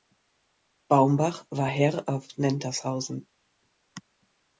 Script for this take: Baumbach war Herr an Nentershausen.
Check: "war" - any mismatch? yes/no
no